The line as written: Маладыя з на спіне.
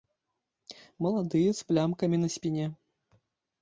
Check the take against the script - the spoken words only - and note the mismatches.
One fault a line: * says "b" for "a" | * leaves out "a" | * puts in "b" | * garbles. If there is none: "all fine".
* puts in "плямкамі"